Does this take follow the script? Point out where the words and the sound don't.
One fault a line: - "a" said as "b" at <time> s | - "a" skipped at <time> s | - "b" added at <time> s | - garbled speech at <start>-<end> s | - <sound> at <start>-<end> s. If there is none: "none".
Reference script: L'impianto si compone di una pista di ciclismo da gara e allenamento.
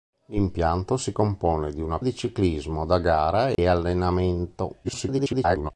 - "pista" skipped at 2.0 s
- dropout at 3.5-3.6 s
- garbled speech at 4.8-5.7 s